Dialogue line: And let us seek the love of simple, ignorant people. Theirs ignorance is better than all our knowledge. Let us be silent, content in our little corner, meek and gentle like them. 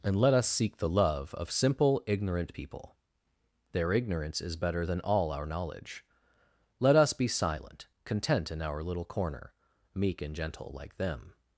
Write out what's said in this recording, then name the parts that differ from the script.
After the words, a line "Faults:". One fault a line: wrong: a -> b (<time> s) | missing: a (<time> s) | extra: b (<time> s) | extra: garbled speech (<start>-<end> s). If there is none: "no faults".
And let us seek the love of simple, ignorant people. Their ignorance is better than all our knowledge. Let us be silent, content in our little corner, meek and gentle like them.
Faults:
wrong: Theirs -> Their (3.7 s)